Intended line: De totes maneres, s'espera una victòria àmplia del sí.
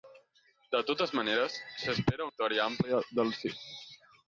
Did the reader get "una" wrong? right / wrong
wrong